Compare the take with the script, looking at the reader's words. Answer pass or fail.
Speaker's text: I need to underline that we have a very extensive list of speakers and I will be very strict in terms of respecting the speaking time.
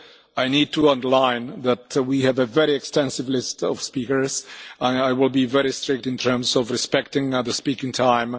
pass